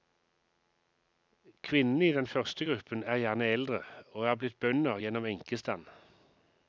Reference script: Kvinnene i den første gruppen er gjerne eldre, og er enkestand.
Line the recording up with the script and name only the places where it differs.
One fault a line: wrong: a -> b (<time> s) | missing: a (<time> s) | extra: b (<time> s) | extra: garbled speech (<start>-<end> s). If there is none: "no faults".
extra: blitt bønder gjennom (4.4 s)